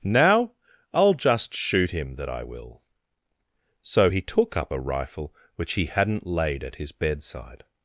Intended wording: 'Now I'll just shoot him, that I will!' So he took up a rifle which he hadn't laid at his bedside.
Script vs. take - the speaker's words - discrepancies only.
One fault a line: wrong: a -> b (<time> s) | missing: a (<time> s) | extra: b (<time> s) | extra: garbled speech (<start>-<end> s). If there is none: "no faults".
no faults